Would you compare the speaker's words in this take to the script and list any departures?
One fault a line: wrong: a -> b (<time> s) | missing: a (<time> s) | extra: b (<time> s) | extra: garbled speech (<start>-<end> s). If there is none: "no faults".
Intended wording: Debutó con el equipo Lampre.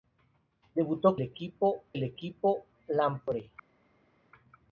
wrong: con -> equipo (1.2 s)